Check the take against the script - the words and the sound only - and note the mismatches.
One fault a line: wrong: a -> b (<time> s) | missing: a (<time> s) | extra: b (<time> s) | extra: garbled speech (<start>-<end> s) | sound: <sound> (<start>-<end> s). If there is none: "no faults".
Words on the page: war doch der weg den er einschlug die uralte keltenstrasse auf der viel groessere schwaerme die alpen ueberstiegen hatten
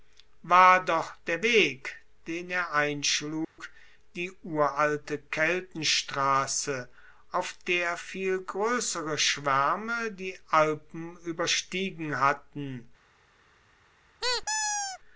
sound: dropout (3.4-3.6 s)
sound: squeak (14.2-15.0 s)